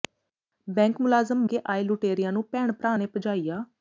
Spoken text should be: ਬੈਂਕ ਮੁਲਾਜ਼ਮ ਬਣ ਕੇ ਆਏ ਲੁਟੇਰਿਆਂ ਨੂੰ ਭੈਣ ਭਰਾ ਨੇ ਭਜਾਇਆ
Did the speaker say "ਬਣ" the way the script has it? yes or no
no